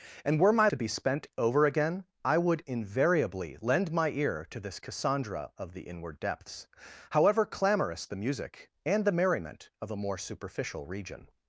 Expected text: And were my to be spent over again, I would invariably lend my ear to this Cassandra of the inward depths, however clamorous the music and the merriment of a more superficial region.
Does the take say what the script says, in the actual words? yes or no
yes